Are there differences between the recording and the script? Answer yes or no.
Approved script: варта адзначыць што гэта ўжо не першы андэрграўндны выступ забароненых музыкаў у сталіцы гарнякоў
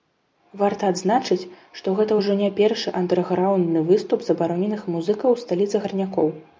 no